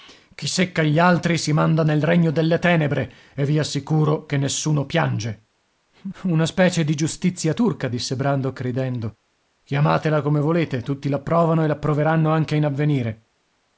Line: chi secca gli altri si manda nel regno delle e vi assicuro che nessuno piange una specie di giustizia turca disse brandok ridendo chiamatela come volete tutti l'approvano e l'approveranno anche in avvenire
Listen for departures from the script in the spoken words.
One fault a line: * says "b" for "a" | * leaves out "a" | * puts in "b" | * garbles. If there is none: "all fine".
* puts in "tenebre"